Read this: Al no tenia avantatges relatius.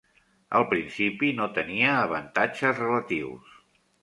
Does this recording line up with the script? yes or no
no